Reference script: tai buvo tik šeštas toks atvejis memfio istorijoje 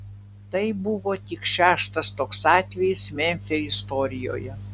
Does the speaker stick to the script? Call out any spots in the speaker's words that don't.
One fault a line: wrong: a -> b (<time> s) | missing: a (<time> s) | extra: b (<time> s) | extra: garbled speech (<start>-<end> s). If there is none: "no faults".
no faults